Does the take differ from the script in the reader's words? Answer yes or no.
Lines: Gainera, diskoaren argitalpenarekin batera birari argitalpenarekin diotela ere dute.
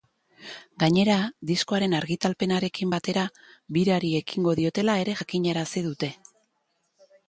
yes